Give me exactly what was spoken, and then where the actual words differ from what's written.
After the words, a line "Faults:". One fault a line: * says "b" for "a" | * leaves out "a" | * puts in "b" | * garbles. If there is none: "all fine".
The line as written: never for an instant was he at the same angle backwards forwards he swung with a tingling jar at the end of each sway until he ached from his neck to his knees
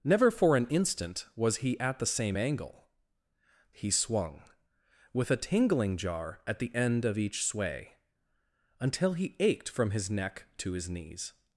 never for an instant was he at the same angle he swung with a tingling jar at the end of each sway until he ached from his neck to his knees
Faults:
* leaves out "backwards forwards"